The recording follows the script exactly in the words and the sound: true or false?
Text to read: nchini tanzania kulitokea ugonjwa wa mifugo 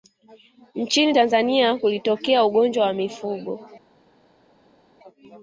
true